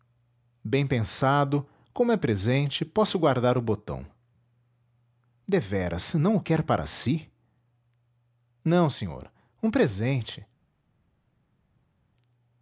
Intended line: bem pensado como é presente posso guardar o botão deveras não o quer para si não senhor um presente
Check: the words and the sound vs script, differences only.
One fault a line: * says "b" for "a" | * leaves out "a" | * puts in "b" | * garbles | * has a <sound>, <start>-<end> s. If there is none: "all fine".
all fine